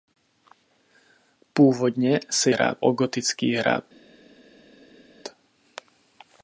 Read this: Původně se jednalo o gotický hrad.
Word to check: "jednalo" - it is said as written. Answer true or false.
false